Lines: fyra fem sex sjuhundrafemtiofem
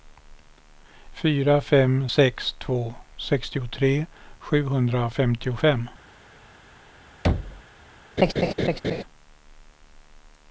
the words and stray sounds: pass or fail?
fail